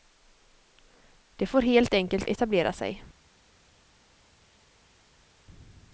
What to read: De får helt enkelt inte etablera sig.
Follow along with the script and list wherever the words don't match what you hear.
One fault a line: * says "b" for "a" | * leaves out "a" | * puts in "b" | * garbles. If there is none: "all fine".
* leaves out "inte"